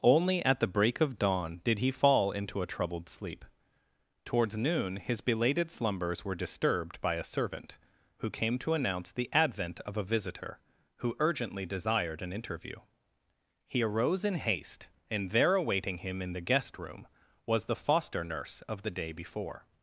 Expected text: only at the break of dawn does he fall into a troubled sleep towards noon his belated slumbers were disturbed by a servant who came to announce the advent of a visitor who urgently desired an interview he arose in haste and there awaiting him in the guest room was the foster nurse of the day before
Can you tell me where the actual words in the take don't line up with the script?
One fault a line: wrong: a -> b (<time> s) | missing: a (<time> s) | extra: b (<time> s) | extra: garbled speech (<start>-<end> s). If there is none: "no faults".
wrong: does -> did (1.6 s)